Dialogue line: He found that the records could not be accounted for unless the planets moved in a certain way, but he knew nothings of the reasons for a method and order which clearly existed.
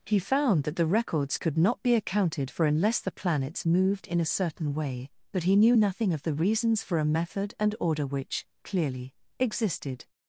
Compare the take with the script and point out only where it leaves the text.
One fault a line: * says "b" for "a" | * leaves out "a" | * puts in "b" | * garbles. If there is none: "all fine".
* says "nothing" for "nothings"